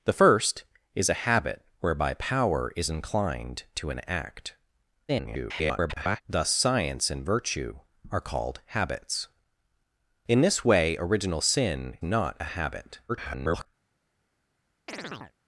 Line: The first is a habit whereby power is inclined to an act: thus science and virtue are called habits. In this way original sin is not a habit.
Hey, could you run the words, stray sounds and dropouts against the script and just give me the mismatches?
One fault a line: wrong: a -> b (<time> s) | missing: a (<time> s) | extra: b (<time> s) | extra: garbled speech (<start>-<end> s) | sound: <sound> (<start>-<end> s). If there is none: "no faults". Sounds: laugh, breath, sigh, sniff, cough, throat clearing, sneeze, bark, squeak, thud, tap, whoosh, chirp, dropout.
extra: garbled speech (5.1-6.2 s)
missing: is (12.0 s)
extra: garbled speech (13.1-13.7 s)
sound: chirp (14.9-15.3 s)